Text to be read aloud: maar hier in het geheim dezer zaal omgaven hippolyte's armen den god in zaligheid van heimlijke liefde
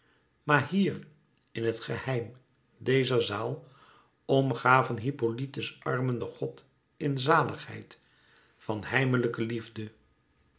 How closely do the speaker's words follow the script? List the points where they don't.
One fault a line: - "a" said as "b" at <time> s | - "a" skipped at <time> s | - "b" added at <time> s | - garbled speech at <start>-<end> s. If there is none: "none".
none